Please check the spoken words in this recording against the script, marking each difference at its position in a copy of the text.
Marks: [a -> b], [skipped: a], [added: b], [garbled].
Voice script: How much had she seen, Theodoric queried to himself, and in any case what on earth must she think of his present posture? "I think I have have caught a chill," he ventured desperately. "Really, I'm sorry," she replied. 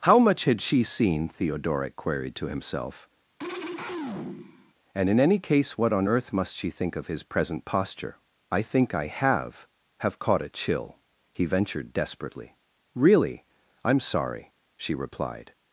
How much had she seen, Theodoric queried to himself, and in any case what on earth must she think of his present posture? "I think I have have caught a chill," he ventured desperately. "Really, I'm sorry," she replied.